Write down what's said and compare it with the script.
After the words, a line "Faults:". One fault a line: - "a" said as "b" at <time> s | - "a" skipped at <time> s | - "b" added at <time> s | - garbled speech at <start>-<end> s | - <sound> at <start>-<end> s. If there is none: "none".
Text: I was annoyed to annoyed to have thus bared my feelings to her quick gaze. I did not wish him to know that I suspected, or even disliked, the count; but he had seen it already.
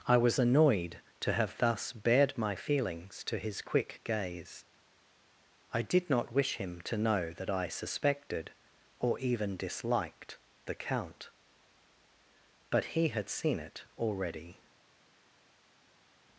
I was annoyed to have thus bared my feelings to his quick gaze. I did not wish him to know that I suspected, or even disliked, the count; but he had seen it already.
Faults:
- "annoyed to" skipped at 1.3 s
- "her" said as "his" at 3.4 s